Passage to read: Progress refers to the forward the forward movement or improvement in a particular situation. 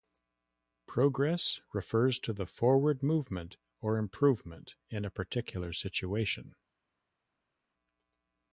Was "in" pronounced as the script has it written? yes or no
yes